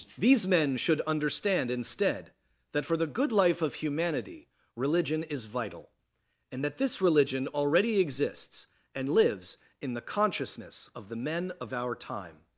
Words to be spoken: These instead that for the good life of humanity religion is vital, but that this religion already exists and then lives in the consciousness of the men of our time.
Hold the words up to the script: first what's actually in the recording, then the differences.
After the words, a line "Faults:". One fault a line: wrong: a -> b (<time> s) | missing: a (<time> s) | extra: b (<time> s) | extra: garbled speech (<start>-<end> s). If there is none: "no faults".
These men should understand instead that for the good life of humanity religion is vital, and that this religion already exists and lives in the consciousness of the men of our time.
Faults:
extra: men should understand (0.5 s)
wrong: but -> and (6.5 s)
missing: then (9.1 s)